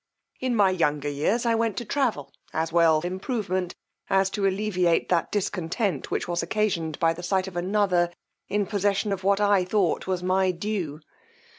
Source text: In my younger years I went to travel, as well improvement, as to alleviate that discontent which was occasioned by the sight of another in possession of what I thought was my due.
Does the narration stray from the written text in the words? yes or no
no